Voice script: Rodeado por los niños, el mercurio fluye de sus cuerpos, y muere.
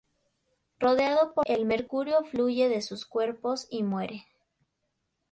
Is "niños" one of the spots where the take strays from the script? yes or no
yes